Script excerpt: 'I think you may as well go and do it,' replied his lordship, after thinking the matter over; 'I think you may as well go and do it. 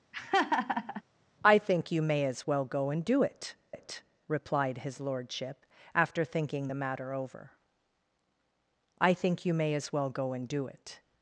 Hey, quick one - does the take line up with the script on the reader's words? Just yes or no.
no